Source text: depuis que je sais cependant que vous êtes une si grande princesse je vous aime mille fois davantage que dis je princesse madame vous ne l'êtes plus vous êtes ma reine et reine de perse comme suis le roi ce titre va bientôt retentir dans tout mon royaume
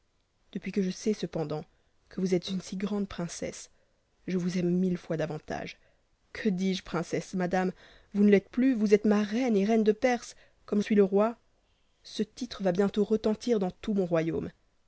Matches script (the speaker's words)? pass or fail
pass